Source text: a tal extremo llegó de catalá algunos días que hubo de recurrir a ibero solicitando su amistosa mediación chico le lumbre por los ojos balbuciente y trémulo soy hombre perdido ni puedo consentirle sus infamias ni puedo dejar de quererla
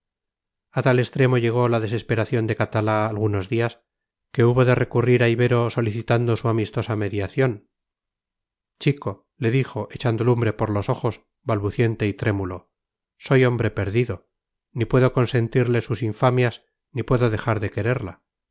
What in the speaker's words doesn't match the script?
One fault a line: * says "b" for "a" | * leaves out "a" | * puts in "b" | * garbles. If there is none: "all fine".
* puts in "la desesperación"
* puts in "dijo echando"